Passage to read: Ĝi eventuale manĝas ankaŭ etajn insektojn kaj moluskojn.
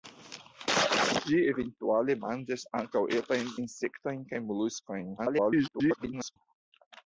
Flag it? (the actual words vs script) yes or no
yes